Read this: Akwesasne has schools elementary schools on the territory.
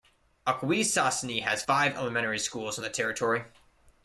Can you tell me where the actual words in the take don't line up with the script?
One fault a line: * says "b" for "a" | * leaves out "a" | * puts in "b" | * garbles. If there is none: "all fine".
* says "five" for "schools"